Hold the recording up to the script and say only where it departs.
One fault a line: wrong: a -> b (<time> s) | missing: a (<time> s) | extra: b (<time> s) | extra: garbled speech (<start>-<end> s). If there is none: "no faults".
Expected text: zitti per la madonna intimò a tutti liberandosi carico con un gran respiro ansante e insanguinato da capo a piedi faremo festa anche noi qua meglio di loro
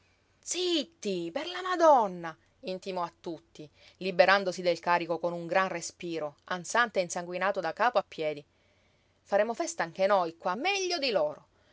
extra: del (4.6 s)